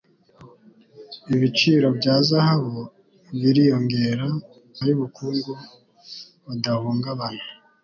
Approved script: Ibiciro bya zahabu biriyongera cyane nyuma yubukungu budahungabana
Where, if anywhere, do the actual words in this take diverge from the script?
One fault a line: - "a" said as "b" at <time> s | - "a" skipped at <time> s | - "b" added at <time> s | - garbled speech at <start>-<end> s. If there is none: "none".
- "cyane nyuma" skipped at 4.3 s